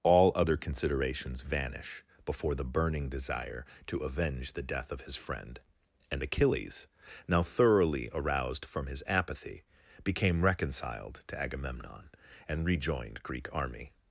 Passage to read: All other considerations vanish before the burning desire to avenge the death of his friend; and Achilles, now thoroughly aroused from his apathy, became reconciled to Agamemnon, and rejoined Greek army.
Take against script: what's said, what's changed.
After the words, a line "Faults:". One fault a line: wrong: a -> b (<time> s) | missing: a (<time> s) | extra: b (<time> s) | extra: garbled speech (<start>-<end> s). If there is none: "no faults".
All other considerations vanish before the burning desire to avenge the death of his friend; and Achilles, now thoroughly aroused from his apathy, became reconciled to Agamemnon, and rejoined Greek army.
Faults:
no faults